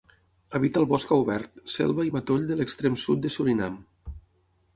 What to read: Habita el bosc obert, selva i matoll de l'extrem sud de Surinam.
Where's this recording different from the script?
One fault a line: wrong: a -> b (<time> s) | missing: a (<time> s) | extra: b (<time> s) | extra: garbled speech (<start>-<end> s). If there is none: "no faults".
no faults